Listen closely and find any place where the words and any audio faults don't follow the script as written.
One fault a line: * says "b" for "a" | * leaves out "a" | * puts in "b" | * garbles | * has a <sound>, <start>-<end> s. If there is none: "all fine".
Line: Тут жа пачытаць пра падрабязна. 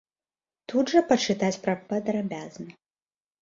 all fine